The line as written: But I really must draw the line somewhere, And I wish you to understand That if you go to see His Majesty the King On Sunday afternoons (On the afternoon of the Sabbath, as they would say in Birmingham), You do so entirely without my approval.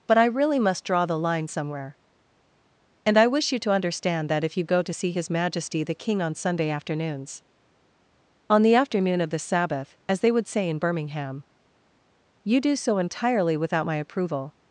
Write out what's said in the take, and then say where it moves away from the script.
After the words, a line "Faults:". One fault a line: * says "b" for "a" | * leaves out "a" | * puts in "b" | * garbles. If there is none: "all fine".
But I really must draw the line somewhere, And I wish you to understand That if you go to see His Majesty the King On Sunday afternoons (On the afternoon of the Sabbath, as they would say in Birmingham), You do so entirely without my approval.
Faults:
all fine